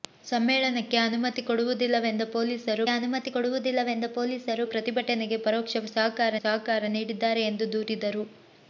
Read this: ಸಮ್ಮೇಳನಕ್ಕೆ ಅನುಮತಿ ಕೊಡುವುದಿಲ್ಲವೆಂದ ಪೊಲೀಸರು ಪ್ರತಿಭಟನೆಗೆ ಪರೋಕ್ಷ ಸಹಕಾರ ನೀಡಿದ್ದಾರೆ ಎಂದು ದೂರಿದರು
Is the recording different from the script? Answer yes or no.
yes